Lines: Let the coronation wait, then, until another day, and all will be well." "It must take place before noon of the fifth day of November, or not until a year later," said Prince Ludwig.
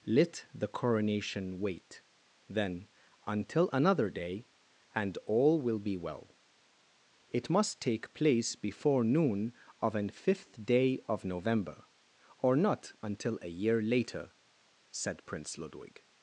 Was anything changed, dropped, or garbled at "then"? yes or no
no